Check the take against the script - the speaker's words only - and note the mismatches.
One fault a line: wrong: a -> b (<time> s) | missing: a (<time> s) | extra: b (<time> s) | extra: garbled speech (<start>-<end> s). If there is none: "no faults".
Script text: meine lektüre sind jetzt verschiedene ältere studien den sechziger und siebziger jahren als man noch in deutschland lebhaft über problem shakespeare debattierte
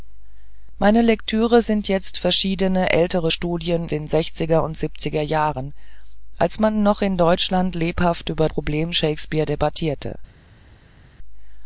no faults